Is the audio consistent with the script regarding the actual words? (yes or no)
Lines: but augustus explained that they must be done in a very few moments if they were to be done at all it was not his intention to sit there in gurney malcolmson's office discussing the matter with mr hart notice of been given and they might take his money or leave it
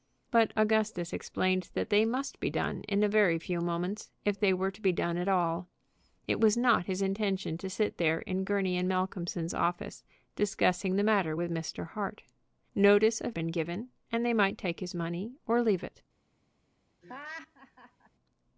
yes